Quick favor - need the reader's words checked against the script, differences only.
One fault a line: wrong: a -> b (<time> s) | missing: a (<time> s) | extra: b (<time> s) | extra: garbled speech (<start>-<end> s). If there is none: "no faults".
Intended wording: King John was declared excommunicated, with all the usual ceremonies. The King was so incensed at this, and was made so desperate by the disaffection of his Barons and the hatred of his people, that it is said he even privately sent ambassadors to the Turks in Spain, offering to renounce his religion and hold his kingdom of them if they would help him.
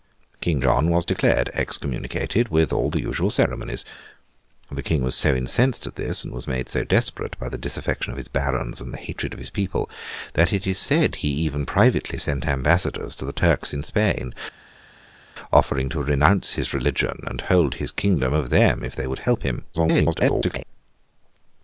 extra: garbled speech (19.7-20.6 s)